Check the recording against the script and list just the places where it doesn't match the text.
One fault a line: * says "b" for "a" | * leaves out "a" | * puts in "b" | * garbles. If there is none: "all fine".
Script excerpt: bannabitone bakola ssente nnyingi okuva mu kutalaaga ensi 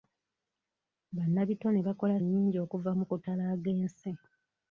* leaves out "ssente"